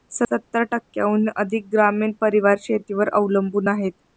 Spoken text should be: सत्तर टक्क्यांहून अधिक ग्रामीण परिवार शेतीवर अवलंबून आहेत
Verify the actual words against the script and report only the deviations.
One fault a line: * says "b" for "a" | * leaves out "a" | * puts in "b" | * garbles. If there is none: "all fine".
all fine